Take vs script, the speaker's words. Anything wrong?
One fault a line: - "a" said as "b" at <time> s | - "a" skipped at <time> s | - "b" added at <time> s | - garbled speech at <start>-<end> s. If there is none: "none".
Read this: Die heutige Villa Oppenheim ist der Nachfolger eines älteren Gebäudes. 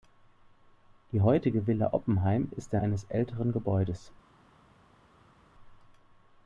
- "Nachfolger" skipped at 2.8 s